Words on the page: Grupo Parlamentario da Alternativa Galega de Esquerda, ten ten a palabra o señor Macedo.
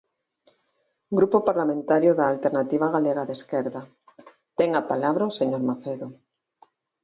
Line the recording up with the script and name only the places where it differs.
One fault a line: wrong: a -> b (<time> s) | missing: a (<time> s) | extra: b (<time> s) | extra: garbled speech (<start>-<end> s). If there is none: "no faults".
missing: ten (4.7 s)